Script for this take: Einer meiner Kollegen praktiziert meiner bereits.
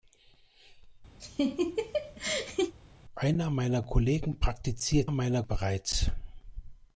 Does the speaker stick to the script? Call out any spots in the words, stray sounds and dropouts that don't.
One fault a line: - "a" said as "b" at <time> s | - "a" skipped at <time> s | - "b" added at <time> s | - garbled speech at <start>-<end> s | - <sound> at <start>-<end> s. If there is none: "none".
- laugh at 1.2-2.7 s